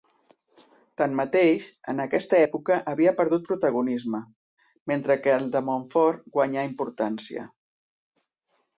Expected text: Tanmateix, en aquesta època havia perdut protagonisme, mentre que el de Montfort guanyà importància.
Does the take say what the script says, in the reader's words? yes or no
yes